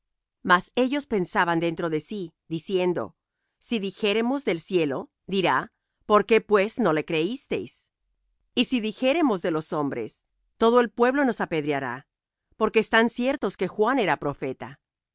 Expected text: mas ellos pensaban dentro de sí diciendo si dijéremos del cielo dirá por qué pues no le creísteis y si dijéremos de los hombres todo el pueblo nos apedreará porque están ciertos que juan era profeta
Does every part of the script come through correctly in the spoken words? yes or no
yes